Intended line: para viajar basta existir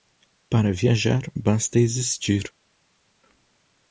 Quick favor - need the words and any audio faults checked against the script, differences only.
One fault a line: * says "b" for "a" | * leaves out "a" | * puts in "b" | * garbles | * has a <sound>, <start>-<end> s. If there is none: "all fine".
all fine